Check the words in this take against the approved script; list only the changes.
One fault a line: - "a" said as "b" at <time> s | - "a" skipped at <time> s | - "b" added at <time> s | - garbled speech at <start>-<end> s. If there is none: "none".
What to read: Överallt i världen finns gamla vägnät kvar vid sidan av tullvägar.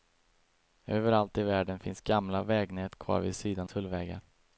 - "av" skipped at 3.7 s